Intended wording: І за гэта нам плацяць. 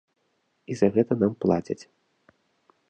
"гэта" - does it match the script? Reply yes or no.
yes